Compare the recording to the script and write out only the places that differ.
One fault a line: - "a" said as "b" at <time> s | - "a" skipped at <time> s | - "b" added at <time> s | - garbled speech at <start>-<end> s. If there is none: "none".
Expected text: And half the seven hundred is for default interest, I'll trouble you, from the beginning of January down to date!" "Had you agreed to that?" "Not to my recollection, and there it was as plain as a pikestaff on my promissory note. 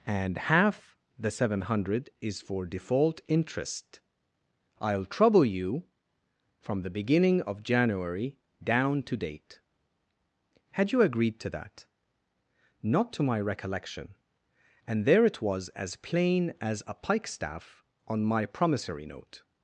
none